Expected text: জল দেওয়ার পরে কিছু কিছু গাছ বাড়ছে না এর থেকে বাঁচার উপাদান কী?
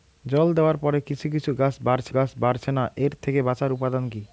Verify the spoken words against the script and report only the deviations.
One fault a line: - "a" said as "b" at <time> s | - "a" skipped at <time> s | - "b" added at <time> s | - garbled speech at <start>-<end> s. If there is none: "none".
- "গাছ বাড়ছে" added at 2.1 s